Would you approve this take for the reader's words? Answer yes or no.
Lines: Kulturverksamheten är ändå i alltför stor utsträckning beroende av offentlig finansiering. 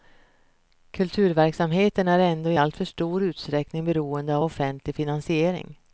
yes